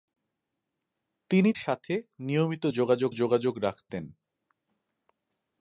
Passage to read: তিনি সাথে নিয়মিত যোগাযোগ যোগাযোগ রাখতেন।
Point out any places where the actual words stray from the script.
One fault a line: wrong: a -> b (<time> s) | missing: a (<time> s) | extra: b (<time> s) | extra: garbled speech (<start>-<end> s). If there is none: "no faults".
no faults